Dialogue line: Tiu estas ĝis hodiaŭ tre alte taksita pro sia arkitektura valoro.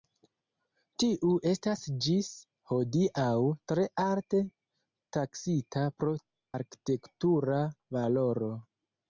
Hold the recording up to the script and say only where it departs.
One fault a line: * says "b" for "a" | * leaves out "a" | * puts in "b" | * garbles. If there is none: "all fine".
* leaves out "sia"